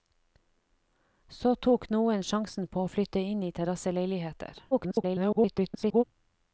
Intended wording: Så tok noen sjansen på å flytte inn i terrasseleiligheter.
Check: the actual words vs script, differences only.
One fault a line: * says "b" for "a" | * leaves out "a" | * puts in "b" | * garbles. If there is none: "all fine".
* garbles